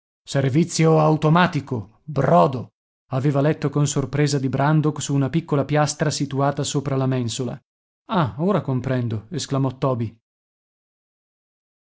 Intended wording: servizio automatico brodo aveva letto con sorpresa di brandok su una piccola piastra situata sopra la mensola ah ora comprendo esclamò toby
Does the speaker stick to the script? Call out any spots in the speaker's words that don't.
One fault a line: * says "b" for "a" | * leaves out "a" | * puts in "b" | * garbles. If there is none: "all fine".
all fine